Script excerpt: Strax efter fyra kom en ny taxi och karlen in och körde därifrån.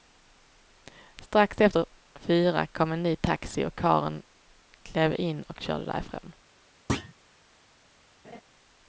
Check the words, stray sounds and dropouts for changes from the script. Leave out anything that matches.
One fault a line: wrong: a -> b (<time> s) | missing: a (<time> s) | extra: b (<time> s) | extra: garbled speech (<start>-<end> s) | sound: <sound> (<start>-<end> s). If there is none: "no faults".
extra: klev (4.8 s)
sound: thud (6.9-7.1 s)
sound: laugh (8.2-8.4 s)